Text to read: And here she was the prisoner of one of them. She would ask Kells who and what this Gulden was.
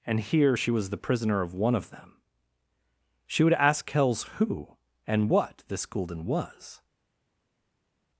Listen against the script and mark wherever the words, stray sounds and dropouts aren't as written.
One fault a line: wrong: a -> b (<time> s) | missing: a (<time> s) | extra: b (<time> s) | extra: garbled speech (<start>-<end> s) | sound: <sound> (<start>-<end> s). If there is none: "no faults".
no faults